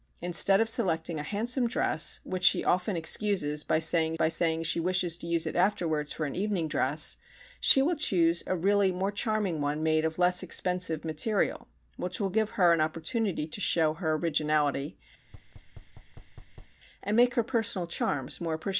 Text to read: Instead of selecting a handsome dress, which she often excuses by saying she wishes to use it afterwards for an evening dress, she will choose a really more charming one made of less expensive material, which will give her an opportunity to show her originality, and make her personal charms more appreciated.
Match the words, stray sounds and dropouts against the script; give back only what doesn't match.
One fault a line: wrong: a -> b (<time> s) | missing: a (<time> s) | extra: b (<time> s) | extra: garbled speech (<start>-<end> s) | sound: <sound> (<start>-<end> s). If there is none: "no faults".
extra: by saying (4.1 s)
sound: thud (15.2-16.8 s)